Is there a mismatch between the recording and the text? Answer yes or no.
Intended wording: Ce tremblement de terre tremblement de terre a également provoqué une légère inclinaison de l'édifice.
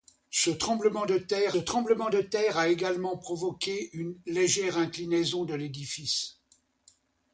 no